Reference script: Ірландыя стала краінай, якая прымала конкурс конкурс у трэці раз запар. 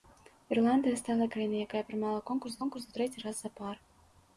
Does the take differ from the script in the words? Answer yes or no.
no